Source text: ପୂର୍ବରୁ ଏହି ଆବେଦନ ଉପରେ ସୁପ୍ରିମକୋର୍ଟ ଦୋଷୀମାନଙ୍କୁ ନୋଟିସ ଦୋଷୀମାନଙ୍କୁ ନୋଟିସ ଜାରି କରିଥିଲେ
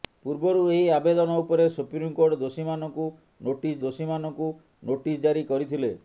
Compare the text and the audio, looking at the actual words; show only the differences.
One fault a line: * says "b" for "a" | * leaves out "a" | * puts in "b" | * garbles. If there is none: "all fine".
all fine